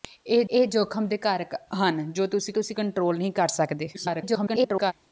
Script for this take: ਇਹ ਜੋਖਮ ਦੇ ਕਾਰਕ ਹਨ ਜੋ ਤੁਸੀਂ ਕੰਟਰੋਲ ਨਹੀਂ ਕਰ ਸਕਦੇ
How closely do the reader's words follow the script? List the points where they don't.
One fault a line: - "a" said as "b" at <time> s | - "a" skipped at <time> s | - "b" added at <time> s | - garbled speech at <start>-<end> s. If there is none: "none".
- "ਇਹ" added at 0.5 s
- "ਤੁਸੀਂ" added at 2.5 s
- garbled speech at 3.9-4.9 s